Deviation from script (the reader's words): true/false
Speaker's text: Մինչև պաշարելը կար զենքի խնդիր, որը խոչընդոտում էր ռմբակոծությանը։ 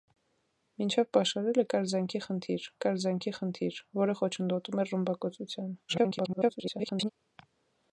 true